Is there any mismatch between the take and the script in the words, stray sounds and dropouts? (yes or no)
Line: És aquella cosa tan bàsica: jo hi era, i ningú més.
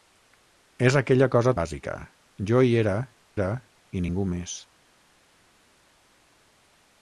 yes